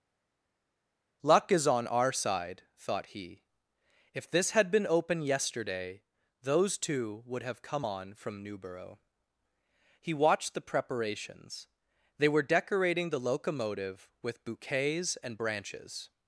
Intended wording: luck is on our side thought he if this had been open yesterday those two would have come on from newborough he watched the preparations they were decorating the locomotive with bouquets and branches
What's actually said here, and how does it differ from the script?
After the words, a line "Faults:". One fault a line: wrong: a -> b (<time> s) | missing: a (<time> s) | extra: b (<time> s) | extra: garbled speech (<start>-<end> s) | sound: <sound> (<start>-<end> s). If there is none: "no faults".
luck is on our side thought he if this had been open yesterday those two would have come on from newborough he watched the preparations they were decorating the locomotive with bouquets and branches
Faults:
no faults